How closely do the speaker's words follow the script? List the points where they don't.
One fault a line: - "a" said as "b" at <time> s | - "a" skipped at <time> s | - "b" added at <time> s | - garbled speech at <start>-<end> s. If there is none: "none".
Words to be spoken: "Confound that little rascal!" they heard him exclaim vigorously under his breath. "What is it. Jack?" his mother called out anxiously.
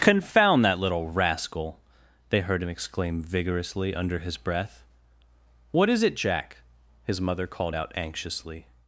none